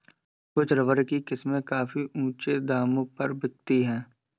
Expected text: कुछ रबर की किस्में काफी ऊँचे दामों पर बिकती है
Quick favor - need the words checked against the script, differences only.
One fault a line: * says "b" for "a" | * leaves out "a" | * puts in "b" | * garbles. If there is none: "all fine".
all fine